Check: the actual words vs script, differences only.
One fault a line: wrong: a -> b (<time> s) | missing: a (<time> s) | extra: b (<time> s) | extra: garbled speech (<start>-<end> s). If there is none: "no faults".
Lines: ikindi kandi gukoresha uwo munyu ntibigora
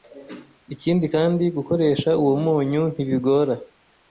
no faults